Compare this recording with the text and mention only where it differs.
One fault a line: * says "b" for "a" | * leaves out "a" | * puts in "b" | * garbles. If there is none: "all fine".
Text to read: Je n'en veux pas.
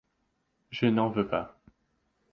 all fine